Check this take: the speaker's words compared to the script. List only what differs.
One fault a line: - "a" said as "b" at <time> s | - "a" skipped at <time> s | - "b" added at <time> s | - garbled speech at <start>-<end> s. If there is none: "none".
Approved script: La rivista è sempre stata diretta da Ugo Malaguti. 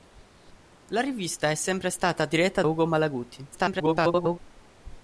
- "da" skipped at 2.6 s
- garbled speech at 3.5-4.4 s